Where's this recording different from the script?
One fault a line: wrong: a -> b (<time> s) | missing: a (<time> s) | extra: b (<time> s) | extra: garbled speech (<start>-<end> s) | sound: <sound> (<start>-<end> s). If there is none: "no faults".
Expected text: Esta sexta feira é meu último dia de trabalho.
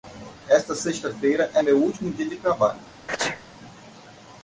sound: sneeze (3.1-3.4 s)